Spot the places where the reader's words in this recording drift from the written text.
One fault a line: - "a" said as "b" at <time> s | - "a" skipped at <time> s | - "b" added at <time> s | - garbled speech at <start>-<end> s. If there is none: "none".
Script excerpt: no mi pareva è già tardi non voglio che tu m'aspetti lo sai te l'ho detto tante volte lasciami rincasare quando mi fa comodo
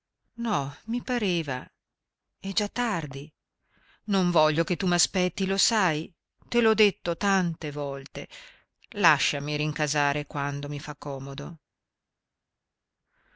none